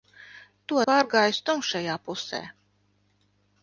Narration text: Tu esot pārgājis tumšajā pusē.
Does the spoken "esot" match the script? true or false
false